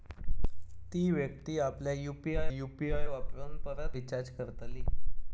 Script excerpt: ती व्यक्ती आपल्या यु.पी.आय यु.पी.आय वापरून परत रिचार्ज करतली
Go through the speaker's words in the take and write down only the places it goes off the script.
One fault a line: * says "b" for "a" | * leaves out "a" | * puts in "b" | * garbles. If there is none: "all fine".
all fine